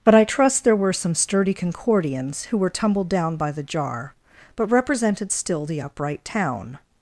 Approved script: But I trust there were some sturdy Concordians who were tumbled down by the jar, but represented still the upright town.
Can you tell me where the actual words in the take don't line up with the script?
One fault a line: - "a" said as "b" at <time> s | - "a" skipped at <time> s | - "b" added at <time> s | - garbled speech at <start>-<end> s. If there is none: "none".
none